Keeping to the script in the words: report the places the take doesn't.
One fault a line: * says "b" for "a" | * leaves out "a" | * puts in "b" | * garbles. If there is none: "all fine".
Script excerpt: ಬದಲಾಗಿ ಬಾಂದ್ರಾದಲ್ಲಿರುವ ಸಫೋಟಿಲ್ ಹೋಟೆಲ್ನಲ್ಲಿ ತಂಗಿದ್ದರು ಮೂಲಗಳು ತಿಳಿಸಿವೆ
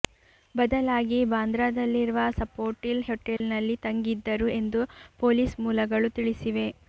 * puts in "ಎಂದು ಪೊಲೀಸ್"